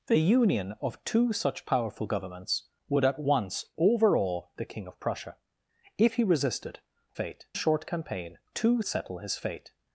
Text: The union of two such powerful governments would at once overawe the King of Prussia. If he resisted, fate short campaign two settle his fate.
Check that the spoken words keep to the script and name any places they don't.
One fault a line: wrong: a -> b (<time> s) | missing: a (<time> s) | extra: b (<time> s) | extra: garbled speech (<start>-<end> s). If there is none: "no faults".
no faults